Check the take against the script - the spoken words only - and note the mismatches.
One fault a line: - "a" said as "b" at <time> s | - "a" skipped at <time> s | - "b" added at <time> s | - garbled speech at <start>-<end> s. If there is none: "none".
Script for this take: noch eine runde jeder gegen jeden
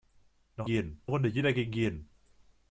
- "eine" said as "jeden" at 0.6 s